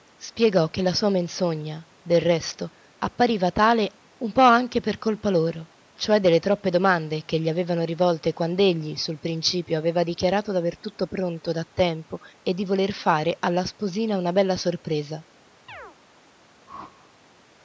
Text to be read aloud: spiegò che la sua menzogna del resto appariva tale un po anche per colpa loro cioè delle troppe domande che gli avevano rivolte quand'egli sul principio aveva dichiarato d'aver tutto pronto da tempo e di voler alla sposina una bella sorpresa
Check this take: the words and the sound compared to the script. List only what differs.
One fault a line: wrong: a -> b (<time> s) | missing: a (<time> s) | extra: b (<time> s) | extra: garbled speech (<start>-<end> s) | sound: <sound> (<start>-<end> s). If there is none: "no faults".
extra: fare (12.9 s)
sound: chirp (15.7-16.0 s)
sound: whoosh (16.7-17.1 s)